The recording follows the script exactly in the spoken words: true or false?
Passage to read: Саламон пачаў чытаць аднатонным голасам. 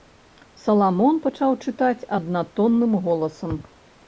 true